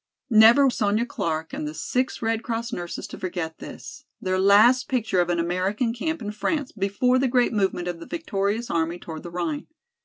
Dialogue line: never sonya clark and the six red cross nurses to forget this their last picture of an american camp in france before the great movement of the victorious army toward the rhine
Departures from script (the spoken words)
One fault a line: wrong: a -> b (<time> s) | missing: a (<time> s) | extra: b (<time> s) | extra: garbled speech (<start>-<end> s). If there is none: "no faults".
no faults